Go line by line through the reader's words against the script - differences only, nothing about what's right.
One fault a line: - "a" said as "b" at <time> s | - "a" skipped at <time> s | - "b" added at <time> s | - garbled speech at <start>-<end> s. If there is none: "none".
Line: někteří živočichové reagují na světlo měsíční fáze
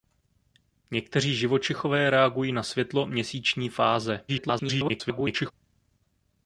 - garbled speech at 4.3-5.5 s